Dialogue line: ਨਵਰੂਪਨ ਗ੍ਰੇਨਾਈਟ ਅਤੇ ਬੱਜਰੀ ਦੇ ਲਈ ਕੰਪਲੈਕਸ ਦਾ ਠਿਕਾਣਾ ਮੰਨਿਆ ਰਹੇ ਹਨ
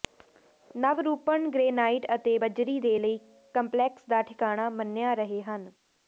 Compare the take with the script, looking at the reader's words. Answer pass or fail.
pass